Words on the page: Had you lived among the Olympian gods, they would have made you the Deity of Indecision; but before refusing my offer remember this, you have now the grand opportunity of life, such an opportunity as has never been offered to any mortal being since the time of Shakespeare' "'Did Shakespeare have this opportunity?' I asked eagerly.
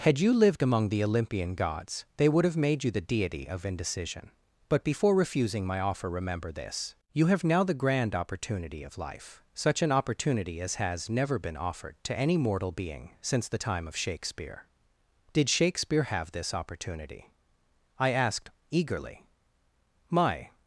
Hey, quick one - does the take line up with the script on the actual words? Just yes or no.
no